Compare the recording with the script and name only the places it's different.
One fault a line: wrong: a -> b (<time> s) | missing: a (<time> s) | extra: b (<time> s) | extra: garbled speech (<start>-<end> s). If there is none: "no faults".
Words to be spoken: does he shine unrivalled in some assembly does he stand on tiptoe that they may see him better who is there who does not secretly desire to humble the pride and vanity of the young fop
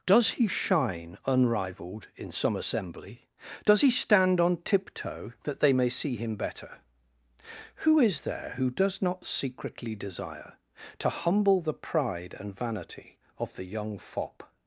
no faults